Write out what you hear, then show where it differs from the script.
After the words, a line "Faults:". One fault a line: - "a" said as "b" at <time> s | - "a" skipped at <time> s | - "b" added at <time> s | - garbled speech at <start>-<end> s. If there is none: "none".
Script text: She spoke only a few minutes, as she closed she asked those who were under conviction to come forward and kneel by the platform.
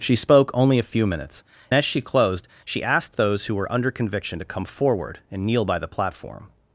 She spoke only a few minutes, as she closed she asked those who were under conviction to come forward and kneel by the platform.
Faults:
none